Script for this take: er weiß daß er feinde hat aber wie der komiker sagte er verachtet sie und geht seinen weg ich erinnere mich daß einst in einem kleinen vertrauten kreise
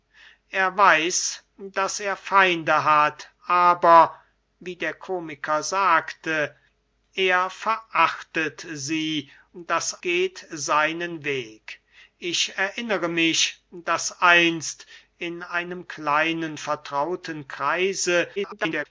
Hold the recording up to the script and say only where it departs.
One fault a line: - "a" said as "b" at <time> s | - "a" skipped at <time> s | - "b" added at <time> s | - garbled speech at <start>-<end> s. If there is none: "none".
- "und" said as "daß" at 9.5 s
- garbled speech at 18.4-18.9 s